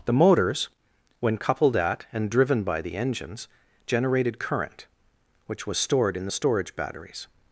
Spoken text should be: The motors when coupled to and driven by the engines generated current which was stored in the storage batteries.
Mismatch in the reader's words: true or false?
true